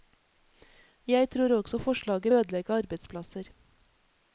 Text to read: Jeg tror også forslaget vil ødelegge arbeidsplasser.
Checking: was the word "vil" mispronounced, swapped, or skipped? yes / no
yes